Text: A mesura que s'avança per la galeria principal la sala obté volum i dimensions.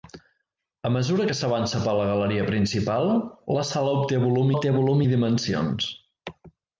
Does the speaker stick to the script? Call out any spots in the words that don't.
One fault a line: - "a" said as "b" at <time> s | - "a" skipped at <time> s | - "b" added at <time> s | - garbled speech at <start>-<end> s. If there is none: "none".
- "obté volum" added at 4.5 s